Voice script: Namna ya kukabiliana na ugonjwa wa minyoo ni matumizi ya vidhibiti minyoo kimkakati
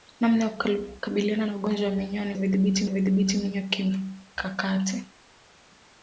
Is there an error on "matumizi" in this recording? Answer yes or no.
yes